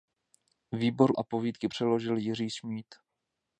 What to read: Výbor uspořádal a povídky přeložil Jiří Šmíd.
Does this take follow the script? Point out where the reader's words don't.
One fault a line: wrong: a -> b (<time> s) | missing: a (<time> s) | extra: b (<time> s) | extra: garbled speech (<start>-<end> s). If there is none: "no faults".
missing: uspořádal (1.1 s)